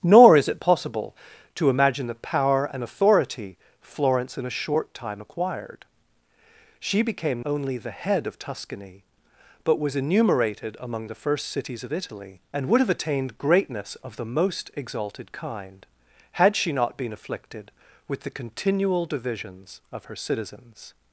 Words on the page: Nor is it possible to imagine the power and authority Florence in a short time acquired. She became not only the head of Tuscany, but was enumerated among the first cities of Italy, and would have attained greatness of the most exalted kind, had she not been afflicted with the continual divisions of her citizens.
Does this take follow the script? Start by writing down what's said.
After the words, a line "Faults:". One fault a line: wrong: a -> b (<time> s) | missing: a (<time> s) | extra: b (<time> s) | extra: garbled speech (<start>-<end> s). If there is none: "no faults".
Nor is it possible to imagine the power and authority Florence in a short time acquired. She became only the head of Tuscany, but was enumerated among the first cities of Italy, and would have attained greatness of the most exalted kind, had she not been afflicted with the continual divisions of her citizens.
Faults:
missing: not (7.5 s)